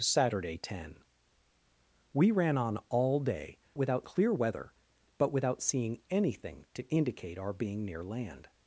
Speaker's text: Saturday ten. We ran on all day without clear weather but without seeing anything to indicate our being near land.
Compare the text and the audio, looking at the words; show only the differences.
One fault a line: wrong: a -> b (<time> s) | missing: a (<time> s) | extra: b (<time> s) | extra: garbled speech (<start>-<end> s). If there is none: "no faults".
no faults